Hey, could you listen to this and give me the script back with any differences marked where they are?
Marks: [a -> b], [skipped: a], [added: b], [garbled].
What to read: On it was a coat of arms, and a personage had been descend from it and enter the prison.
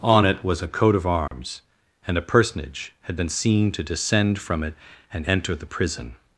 On it was a coat of arms, and a personage had been [added: seen to] descend from it and enter the prison.